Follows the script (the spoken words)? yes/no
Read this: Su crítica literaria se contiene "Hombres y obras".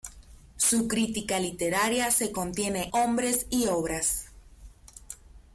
yes